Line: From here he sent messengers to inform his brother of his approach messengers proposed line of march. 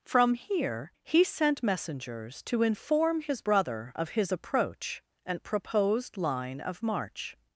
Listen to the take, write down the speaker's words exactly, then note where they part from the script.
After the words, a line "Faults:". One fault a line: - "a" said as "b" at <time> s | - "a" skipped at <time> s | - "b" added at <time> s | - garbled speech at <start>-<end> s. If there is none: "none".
From here he sent messengers to inform his brother of his approach and proposed line of march.
Faults:
- "messengers" said as "and" at 5.2 s